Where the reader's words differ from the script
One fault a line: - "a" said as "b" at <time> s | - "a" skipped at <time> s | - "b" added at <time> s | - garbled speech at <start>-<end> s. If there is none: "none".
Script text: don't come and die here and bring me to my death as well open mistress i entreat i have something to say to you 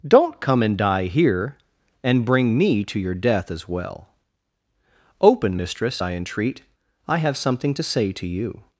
- "my" said as "your" at 3.0 s